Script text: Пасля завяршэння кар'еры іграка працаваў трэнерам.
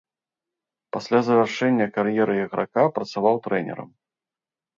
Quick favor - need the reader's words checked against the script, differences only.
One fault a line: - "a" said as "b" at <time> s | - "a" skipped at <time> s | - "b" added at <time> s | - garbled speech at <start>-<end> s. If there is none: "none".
none